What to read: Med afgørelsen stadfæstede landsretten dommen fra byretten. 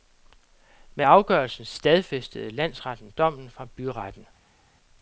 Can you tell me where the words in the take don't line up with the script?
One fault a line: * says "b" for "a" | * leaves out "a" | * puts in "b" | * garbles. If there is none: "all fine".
all fine